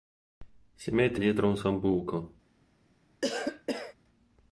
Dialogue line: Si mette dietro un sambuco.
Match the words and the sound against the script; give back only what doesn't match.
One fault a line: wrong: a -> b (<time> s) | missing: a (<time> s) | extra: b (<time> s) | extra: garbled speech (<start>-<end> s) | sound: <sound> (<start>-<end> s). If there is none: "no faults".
sound: cough (3.2-3.9 s)